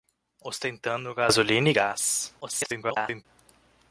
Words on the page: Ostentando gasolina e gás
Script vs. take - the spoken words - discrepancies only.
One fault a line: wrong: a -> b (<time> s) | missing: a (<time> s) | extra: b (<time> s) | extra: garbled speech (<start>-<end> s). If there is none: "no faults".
extra: garbled speech (2.4-3.3 s)